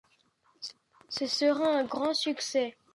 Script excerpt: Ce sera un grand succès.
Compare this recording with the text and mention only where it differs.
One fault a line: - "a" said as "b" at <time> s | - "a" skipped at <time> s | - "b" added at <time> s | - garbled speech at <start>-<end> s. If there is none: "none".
none